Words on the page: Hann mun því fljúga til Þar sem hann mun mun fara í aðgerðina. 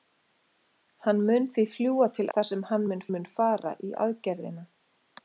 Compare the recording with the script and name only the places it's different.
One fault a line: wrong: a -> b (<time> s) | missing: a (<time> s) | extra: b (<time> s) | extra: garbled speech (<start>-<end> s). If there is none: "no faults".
no faults